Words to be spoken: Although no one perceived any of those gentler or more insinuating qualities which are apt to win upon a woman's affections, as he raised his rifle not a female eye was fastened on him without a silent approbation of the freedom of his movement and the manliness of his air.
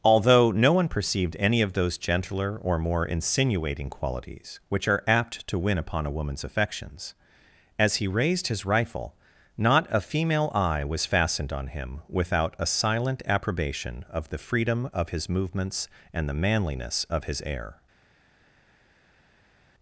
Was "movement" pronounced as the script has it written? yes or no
no